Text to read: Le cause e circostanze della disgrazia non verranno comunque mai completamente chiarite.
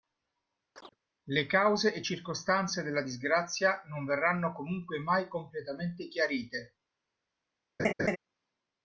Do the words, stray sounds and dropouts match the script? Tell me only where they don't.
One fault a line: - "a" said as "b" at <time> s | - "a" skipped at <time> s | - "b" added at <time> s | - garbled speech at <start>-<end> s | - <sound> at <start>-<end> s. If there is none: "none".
- chirp at 0.7-1.0 s
- laugh at 7.8-8.2 s